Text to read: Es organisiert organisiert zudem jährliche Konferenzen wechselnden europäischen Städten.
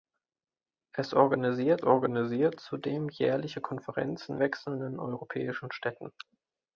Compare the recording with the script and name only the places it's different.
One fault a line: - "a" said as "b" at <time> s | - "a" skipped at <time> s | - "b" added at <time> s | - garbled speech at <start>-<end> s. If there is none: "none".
none